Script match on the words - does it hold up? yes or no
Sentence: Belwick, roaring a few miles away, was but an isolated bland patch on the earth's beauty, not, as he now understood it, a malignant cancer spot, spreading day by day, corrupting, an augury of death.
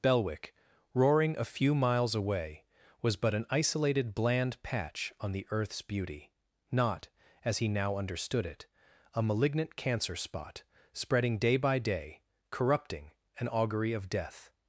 yes